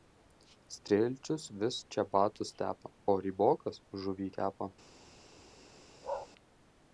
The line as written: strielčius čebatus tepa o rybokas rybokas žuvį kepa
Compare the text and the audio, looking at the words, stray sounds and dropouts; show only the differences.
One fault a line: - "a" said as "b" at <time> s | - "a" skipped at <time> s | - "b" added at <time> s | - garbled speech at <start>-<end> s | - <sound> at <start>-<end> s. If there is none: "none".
- "vis" added at 1.6 s
- "rybokas" skipped at 3.8 s
- bark at 6.0-6.3 s